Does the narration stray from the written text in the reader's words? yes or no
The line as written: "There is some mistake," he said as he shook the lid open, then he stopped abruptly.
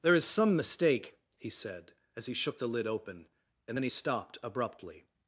yes